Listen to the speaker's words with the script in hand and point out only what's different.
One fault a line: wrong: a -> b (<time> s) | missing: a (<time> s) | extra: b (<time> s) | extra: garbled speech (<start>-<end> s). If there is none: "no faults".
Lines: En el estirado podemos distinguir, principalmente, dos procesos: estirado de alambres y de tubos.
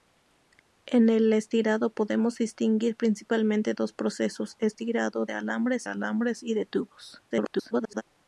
extra: alambres (5.8 s)
extra: garbled speech (7.3-8.0 s)